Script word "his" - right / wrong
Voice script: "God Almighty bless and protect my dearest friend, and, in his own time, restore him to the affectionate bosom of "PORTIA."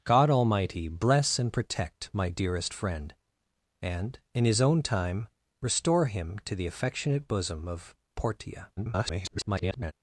right